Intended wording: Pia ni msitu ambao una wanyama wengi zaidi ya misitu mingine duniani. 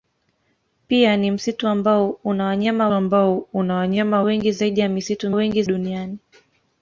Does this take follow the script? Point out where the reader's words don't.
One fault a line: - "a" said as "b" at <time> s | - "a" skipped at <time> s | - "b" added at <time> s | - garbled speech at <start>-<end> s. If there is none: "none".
- "ambao una wanyama" added at 2.9 s
- "mingine" said as "wengi" at 5.3 s